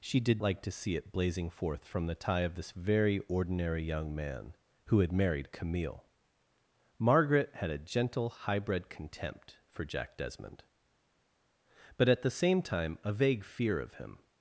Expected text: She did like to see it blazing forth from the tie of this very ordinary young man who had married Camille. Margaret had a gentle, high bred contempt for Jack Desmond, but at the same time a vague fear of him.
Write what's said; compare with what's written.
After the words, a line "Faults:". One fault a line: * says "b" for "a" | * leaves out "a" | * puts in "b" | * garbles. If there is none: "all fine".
She did like to see it blazing forth from the tie of this very ordinary young man who had married Camille. Margaret had a gentle, high bred contempt for Jack Desmond, but at the same time a vague fear of him.
Faults:
all fine